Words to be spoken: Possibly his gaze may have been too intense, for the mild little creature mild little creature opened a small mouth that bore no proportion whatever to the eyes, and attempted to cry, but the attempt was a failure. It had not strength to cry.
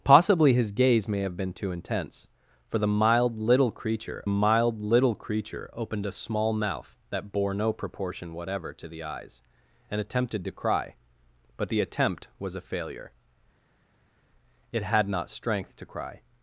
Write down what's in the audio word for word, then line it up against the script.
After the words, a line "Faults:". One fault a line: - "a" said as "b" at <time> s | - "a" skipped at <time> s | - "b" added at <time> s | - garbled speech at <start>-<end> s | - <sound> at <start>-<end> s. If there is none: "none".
Possibly his gaze may have been too intense, for the mild little creature mild little creature opened a small mouth that bore no proportion whatever to the eyes, and attempted to cry, but the attempt was a failure. It had not strength to cry.
Faults:
none